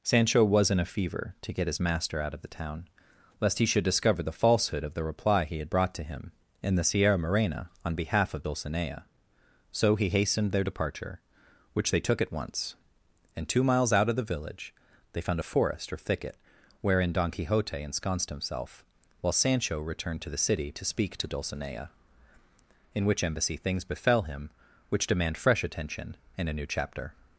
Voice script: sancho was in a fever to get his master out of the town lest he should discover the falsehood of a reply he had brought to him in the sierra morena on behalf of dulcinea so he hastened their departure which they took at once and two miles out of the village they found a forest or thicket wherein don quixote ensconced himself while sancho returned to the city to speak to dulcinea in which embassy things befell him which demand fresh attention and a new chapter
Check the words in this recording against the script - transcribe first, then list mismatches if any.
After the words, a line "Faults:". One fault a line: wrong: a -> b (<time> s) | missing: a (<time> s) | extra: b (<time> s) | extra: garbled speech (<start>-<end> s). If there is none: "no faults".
sancho was in a fever to get his master out of the town lest he should discover the falsehood of the reply he had brought to him in the sierra morena on behalf of dulcinea so he hastened their departure which they took at once and two miles out of the village they found a forest or thicket wherein don quixote ensconced himself while sancho returned to the city to speak to dulcinea in which embassy things befell him which demand fresh attention and a new chapter
Faults:
wrong: a -> the (4.9 s)